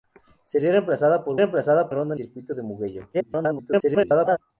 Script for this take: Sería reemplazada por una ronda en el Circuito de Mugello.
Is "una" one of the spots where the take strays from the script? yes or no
yes